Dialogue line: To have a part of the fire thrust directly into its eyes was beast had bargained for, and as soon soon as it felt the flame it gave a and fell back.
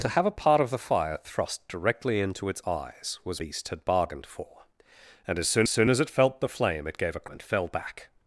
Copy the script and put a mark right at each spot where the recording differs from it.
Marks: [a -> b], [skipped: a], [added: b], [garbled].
To have a part of the fire thrust directly into its eyes was beast had bargained for, and as soon soon as it felt the flame it gave a and fell back.